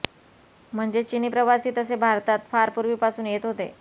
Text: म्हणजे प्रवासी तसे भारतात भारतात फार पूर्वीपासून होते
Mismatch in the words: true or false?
true